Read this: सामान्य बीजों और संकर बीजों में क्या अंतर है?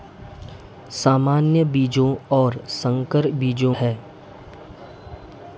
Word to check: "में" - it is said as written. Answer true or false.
false